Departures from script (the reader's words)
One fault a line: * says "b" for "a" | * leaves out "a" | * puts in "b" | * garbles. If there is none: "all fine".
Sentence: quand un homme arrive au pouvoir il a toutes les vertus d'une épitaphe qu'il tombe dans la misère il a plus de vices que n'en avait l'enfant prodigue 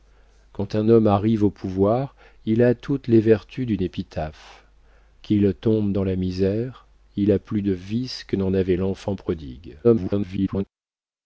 * garbles